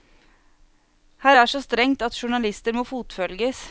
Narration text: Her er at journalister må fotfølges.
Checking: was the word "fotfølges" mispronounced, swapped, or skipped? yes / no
no